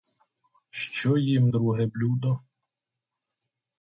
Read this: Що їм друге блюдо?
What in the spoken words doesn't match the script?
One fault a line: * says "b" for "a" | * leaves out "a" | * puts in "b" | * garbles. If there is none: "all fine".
all fine